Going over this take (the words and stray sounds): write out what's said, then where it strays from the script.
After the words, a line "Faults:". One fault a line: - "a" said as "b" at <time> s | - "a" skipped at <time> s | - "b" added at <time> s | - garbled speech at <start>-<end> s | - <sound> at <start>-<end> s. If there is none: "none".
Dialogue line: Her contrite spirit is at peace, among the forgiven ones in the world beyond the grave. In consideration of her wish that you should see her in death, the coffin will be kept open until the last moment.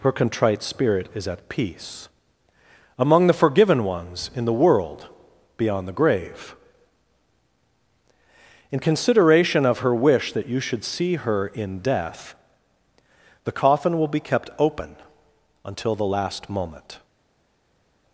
Her contrite spirit is at peace, among the forgiven ones in the world beyond the grave. In consideration of her wish that you should see her in death, the coffin will be kept open until the last moment.
Faults:
none